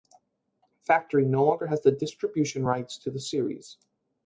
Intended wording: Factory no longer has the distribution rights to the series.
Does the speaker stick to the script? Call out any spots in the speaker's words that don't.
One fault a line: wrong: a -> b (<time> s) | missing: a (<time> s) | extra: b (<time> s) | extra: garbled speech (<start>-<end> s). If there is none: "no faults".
no faults